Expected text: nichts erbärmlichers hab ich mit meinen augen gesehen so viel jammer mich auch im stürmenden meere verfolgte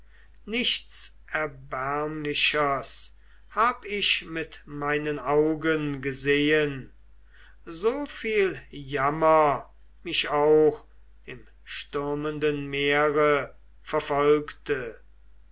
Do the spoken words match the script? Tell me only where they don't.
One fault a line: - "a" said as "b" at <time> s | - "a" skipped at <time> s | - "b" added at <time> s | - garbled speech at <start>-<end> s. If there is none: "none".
none